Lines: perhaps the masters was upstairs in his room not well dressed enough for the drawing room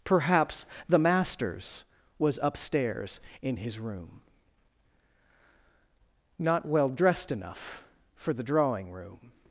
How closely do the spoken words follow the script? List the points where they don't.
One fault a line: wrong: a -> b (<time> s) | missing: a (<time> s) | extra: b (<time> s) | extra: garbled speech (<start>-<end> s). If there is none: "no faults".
no faults